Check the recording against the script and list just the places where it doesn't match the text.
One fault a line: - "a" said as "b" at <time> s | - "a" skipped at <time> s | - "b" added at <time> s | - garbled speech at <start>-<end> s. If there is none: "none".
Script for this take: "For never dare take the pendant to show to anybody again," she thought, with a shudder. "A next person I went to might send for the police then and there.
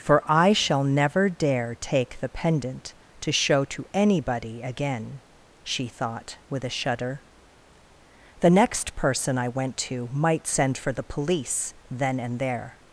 - "I shall" added at 0.2 s
- "A" said as "The" at 8.4 s